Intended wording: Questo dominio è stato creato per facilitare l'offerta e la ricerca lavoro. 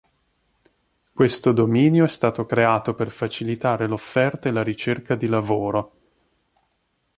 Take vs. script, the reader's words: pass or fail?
fail